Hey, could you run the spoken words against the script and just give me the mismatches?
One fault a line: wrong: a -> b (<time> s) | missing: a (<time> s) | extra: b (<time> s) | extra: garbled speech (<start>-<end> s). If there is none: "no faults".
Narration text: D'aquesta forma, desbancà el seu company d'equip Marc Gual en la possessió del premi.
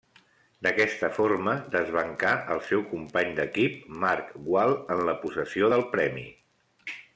no faults